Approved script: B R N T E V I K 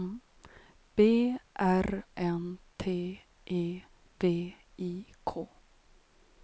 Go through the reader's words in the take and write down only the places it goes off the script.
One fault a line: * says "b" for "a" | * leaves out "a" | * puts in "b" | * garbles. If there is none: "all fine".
all fine